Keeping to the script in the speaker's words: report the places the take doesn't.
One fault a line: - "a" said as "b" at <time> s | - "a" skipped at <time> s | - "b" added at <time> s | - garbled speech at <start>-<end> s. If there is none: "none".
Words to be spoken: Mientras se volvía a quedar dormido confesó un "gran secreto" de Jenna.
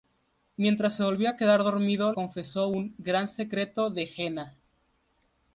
none